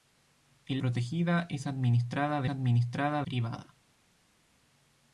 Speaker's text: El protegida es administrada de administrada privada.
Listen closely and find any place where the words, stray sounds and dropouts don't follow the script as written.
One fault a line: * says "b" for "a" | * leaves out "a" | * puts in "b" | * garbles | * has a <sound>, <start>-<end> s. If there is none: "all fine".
all fine